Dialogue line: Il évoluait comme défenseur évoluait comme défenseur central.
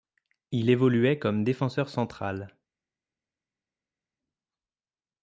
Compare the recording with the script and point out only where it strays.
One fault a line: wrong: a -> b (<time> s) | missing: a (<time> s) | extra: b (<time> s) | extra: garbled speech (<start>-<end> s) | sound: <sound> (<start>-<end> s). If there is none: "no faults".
missing: évoluait comme défenseur (1.9 s)